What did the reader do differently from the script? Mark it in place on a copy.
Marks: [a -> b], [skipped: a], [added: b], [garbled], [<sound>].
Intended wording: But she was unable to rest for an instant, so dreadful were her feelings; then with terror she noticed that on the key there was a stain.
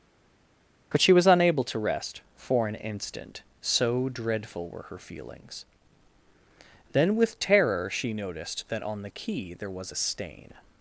But she was unable to rest for an instant, so dreadful were her feelings; then with terror she noticed that on the key there was a stain.